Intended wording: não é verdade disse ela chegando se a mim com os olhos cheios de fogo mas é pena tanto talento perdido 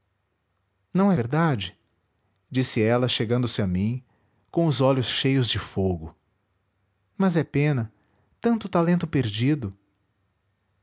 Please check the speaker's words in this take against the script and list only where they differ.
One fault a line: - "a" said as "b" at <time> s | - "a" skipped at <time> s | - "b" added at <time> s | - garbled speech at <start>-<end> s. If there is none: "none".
none